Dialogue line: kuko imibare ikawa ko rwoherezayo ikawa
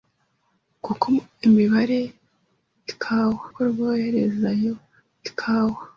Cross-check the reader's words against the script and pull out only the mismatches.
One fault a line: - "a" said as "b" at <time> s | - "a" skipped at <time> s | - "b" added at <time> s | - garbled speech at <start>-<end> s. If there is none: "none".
none